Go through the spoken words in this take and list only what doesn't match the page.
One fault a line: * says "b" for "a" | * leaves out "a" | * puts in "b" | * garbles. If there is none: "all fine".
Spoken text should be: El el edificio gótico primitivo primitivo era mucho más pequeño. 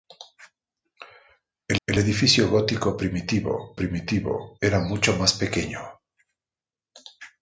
all fine